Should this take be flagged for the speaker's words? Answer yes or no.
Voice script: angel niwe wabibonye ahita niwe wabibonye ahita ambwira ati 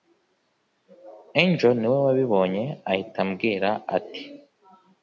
yes